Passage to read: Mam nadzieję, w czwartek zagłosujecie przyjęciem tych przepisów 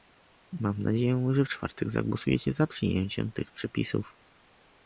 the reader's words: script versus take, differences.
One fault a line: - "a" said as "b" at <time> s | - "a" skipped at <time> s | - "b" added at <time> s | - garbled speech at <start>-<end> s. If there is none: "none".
- "że" added at 1.3 s
- "za" added at 2.5 s